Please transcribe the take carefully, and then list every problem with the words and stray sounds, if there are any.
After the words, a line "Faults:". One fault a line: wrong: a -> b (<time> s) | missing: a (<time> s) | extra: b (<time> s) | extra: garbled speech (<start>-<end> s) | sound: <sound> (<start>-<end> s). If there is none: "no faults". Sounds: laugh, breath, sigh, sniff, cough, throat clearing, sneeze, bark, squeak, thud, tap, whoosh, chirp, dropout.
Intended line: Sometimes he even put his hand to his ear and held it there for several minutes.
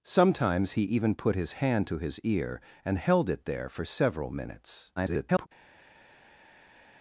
Sometimes he even put his hand to his ear and held it there for several minutes. [garbled]
Faults:
extra: garbled speech (5.0-5.5 s)